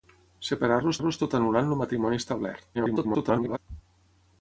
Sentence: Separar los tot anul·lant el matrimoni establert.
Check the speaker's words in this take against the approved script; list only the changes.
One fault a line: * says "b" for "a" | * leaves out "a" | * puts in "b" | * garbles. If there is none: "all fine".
* puts in "los"
* garbles